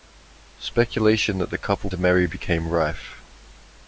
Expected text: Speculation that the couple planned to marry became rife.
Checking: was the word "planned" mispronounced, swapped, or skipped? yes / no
yes